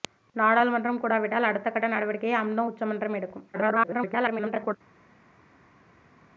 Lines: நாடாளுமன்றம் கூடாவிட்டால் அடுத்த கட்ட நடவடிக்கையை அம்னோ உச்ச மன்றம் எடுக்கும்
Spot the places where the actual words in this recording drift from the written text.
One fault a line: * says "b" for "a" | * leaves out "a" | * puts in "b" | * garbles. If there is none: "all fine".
* garbles